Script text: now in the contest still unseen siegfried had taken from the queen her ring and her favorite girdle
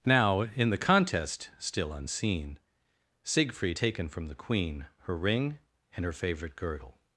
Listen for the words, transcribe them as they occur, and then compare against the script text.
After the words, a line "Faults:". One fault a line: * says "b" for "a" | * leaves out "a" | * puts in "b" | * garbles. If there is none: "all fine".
now in the contest still unseen siegfried taken from the queen her ring and her favorite girdle
Faults:
* leaves out "had"